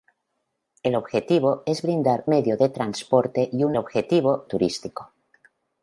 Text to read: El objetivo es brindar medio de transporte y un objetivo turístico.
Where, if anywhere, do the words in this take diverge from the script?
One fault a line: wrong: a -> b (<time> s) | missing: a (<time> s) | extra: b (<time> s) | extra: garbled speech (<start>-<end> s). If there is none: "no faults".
no faults